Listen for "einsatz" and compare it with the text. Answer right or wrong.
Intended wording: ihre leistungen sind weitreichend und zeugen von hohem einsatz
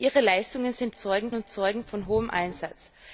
right